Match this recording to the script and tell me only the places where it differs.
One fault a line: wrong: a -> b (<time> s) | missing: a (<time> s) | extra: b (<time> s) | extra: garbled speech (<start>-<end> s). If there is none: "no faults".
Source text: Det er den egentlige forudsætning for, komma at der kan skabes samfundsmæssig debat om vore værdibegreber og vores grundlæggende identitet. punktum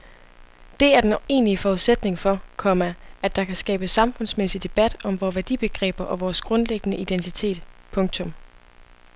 no faults